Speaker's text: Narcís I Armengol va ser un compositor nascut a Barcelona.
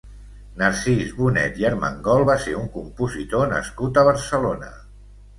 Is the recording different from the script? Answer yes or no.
yes